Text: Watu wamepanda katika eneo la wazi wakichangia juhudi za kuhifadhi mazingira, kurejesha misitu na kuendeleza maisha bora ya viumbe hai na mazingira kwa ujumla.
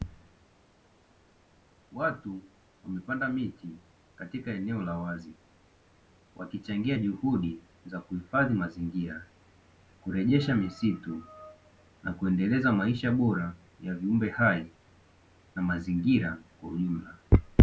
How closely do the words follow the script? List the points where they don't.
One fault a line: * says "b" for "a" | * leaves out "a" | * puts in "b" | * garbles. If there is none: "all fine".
* puts in "miti"